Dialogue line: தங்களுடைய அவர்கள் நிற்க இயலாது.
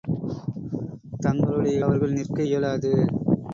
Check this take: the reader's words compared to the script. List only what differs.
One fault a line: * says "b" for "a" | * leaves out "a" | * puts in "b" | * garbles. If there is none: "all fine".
all fine